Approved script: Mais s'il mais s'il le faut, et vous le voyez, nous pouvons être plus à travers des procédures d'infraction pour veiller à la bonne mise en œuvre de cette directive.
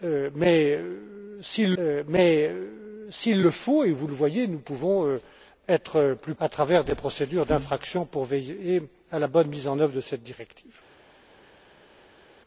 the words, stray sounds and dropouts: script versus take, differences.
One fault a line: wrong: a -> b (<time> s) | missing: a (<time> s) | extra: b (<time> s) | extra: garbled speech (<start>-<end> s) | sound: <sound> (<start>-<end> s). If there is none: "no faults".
no faults